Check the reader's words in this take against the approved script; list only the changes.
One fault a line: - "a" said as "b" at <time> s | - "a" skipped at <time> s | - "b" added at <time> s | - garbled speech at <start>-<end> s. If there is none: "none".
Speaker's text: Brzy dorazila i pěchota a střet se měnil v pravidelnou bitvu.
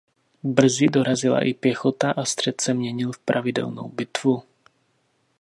none